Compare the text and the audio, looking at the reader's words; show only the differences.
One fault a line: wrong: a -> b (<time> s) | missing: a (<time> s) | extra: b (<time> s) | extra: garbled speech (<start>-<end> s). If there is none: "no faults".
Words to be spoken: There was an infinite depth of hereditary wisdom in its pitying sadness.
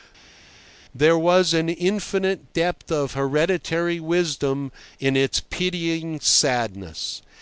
no faults